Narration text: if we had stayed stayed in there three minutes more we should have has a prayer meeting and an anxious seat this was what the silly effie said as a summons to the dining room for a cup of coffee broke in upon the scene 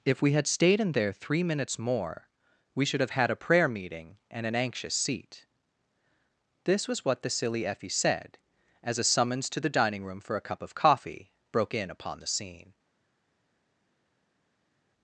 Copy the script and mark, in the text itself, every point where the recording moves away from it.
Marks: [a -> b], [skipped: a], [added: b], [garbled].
if we had stayed [skipped: stayed] in there three minutes more we should have [has -> had] a prayer meeting and an anxious seat this was what the silly effie said as a summons to the dining room for a cup of coffee broke in upon the scene